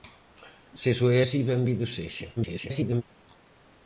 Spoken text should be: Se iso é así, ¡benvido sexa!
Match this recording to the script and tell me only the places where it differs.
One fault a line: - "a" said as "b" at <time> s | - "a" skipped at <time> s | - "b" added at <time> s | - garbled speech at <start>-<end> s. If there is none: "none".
- garbled speech at 2.4-3.0 s